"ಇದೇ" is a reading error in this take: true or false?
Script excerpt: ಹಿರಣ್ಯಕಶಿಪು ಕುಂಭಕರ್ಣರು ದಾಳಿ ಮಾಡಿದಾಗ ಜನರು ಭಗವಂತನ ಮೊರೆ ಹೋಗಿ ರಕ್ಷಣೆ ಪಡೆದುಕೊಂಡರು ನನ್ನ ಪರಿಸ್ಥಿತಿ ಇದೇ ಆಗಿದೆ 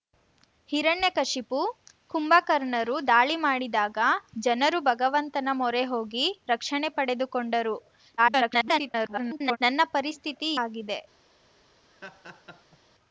true